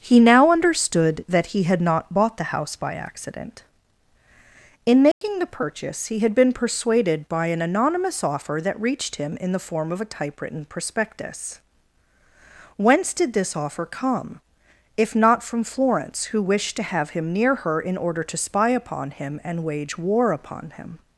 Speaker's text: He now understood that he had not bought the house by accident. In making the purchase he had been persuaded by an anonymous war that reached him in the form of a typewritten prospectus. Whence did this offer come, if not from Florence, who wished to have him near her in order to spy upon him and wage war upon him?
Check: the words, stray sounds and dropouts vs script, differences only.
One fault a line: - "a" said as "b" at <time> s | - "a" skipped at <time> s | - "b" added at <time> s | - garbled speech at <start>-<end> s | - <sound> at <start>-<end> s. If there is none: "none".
- dropout at 5.1-5.2 s
- "war" said as "offer" at 8.2 s